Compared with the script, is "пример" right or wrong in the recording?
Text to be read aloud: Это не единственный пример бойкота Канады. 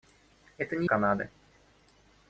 wrong